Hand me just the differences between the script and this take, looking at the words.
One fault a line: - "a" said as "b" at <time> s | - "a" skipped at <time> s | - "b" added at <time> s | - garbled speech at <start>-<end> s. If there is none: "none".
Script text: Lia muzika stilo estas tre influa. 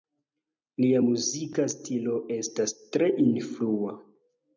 none